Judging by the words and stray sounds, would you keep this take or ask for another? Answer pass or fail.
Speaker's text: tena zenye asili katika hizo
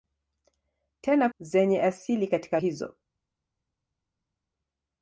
pass